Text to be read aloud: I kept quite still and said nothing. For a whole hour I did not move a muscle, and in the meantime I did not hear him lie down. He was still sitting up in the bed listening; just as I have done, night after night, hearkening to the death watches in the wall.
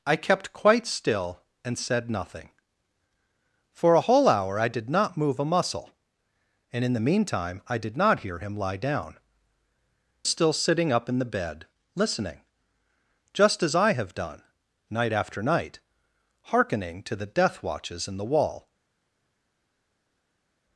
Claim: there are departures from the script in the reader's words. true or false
true